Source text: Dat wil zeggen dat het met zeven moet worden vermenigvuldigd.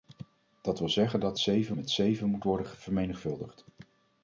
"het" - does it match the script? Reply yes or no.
no